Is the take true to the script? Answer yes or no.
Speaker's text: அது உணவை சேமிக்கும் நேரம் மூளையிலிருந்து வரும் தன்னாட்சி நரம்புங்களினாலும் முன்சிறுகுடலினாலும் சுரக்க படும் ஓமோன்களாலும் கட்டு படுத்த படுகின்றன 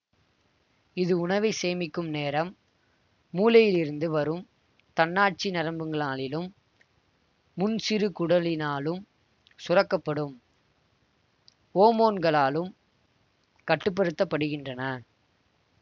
no